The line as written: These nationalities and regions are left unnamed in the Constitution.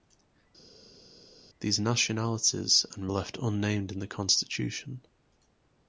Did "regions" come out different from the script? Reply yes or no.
yes